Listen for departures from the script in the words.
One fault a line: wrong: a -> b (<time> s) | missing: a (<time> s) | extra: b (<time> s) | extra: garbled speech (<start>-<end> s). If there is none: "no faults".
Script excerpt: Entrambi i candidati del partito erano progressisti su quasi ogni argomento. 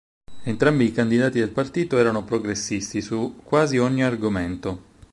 no faults